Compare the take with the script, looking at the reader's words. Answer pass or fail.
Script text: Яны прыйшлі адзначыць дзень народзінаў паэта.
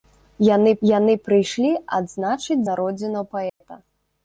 fail